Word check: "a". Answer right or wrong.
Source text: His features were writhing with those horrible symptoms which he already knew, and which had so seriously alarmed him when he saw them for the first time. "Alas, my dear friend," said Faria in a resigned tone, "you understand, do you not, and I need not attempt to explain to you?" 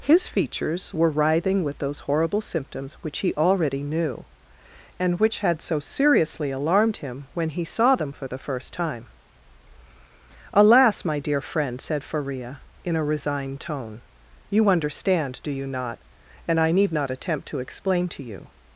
right